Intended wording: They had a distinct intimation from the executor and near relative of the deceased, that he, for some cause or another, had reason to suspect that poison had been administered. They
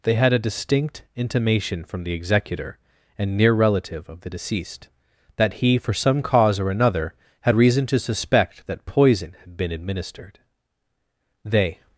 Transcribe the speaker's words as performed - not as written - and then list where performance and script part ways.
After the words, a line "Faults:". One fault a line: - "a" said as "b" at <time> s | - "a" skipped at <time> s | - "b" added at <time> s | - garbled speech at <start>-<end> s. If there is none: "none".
They had a distinct intimation from the executor and near relative of the deceased, that he, for some cause or another, had reason to suspect that poison had been administered. They
Faults:
none